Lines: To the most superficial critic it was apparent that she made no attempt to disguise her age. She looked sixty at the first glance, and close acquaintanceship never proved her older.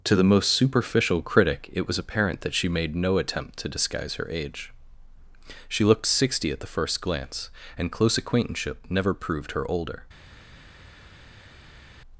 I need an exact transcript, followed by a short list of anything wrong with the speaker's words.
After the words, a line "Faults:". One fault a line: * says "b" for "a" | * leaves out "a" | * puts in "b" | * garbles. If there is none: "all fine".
To the most superficial critic it was apparent that she made no attempt to disguise her age. She looked sixty at the first glance, and close acquaintanceship never proved her older.
Faults:
all fine